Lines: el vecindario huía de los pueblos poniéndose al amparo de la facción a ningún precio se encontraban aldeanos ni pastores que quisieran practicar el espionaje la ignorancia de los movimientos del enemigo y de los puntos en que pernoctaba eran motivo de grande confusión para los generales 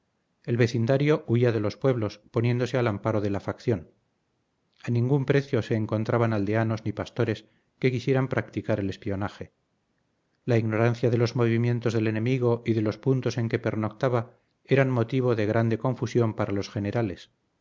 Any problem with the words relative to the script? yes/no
no